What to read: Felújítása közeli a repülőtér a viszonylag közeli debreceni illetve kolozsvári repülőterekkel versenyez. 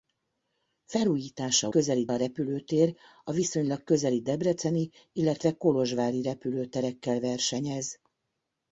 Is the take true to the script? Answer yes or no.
yes